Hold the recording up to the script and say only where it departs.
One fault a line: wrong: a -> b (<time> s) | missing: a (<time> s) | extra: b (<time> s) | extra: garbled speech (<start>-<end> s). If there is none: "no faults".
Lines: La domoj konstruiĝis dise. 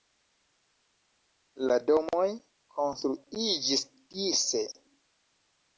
no faults